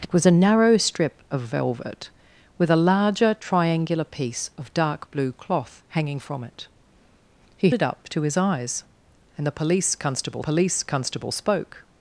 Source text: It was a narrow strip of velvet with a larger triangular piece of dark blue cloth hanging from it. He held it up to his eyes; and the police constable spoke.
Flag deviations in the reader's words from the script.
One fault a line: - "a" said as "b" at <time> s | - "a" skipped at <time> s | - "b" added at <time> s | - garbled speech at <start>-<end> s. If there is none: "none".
- "held" skipped at 7.7 s
- "police constable" added at 10.4 s